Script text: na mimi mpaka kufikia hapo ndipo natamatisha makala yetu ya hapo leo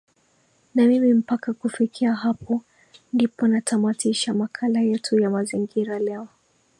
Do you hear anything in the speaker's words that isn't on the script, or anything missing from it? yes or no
yes